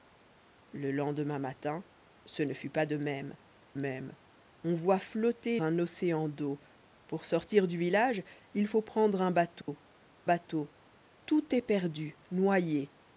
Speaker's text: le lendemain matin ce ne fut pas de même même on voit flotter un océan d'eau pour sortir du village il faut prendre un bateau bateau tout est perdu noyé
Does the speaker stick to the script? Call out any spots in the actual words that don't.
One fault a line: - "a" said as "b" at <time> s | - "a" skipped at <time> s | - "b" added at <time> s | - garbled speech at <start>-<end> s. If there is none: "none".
none